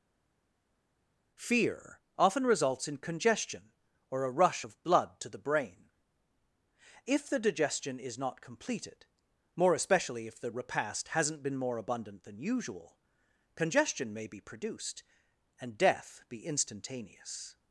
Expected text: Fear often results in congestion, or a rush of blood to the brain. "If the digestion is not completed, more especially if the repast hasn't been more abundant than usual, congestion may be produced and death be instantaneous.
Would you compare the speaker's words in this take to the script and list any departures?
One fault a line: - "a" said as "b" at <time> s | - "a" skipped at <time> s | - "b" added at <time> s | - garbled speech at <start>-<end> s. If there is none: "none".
none